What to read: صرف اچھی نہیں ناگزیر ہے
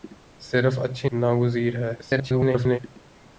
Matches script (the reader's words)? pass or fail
fail